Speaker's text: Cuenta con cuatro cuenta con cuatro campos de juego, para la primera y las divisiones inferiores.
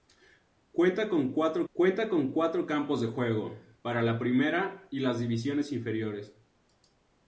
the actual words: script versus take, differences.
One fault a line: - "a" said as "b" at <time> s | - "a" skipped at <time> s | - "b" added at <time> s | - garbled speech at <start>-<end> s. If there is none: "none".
none